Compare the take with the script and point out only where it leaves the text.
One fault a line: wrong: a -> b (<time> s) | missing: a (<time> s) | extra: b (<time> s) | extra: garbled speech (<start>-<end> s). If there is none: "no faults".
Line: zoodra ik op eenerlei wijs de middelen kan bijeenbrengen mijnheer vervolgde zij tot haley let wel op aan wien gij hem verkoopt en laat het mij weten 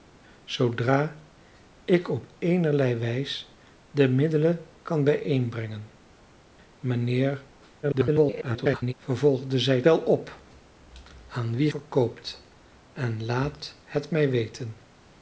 extra: garbled speech (7.8-8.9 s)
missing: tot haley let (9.8 s)
missing: gij hem (11.7 s)